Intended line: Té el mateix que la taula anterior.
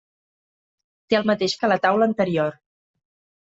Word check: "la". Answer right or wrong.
right